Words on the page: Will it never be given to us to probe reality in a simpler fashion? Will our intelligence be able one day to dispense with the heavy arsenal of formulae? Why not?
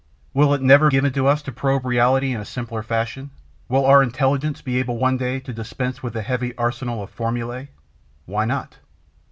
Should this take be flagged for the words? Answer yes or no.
yes